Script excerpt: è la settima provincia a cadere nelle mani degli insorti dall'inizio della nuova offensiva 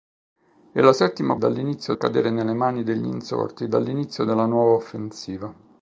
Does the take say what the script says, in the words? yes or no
no